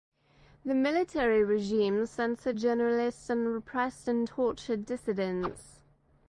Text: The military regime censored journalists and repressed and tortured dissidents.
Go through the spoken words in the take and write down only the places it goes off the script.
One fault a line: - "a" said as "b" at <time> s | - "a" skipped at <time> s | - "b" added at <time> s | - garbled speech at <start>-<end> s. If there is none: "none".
none